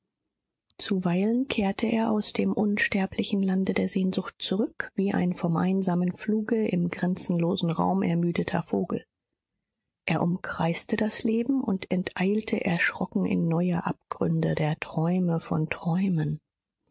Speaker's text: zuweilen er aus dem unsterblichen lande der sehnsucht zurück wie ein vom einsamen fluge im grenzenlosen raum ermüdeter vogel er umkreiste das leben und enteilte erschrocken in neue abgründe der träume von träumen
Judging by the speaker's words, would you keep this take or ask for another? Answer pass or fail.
fail